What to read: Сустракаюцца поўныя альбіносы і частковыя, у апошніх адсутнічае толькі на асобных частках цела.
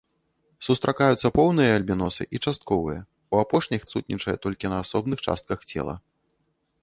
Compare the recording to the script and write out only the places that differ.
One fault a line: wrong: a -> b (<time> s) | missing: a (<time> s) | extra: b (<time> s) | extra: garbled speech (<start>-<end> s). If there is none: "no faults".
no faults